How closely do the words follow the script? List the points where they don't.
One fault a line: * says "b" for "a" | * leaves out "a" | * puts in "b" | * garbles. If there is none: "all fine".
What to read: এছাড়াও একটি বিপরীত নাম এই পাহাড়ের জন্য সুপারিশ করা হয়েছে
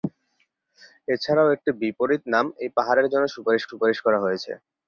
* puts in "সুপারিশ"